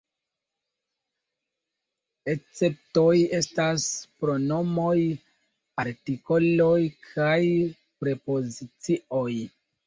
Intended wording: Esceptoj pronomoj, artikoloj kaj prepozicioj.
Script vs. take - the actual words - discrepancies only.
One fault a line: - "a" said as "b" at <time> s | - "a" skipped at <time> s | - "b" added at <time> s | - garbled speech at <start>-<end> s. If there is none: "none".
- "estas" added at 3.4 s